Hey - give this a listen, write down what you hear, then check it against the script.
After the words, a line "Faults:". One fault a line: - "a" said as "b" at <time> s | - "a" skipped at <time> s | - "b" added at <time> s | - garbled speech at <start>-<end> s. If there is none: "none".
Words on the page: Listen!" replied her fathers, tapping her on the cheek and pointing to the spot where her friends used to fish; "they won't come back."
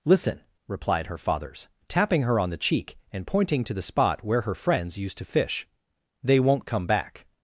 Listen!" replied her fathers, tapping her on the cheek and pointing to the spot where her friends used to fish; "they won't come back."
Faults:
none